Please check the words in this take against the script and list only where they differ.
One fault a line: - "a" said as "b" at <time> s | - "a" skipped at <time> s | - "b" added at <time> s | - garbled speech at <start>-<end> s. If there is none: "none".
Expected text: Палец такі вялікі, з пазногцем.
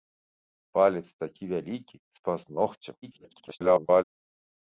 - garbled speech at 3.0-4.0 s